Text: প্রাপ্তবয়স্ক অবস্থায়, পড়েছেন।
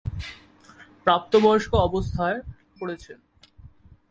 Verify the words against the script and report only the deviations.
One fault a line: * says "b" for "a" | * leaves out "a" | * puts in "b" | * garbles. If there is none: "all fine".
all fine